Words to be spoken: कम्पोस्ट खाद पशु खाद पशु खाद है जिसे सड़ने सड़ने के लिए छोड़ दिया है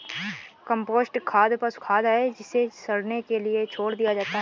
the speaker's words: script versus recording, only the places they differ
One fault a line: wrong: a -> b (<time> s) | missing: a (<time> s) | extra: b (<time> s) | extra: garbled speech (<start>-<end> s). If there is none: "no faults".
missing: पशु खाद (2.0 s)
missing: सड़ने (3.2 s)
extra: जाता (4.1 s)